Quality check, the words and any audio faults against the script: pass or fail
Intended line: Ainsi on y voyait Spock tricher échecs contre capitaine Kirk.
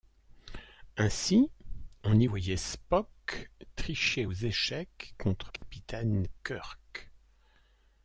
fail